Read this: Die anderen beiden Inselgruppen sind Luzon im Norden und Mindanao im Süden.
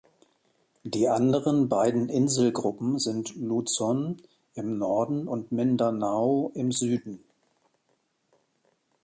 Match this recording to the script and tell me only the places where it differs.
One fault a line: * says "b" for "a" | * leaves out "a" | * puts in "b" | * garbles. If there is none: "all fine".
all fine